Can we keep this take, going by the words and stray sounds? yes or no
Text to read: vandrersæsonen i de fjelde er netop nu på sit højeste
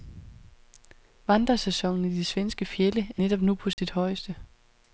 no